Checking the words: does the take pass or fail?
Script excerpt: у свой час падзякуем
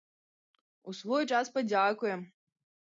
pass